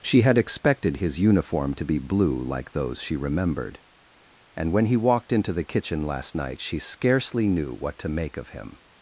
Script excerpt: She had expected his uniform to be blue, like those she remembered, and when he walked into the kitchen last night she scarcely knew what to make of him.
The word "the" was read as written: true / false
true